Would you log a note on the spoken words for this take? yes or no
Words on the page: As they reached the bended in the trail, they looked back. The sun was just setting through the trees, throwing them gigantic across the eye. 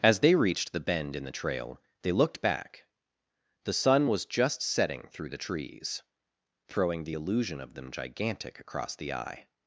yes